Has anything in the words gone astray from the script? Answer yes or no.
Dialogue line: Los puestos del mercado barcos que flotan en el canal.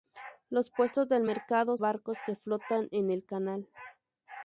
no